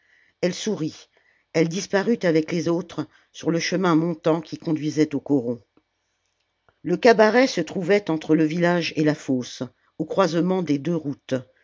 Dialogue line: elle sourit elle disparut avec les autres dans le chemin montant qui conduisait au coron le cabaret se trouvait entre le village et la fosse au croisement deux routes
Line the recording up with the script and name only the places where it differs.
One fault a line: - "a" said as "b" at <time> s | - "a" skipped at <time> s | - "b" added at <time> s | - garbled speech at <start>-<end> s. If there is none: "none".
- "dans" said as "sur" at 3.3 s
- "des" added at 10.6 s